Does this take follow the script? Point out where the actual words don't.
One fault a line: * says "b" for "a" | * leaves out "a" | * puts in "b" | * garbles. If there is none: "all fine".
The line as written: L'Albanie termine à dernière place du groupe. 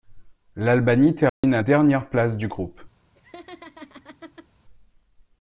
all fine